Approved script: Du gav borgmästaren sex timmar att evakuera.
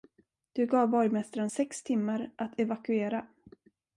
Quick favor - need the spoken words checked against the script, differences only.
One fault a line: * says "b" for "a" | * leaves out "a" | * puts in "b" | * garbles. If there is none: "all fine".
all fine